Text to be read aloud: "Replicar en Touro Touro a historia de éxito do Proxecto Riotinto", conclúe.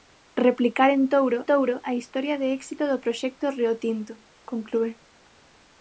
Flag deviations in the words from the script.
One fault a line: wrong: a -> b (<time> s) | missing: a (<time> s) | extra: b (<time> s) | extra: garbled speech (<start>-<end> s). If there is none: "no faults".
no faults